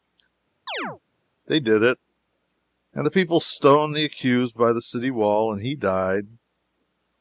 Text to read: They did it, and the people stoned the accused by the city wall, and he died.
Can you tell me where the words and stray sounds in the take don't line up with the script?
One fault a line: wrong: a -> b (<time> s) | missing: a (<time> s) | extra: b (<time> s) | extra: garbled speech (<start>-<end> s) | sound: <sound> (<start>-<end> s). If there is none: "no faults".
sound: chirp (0.7-1.0 s)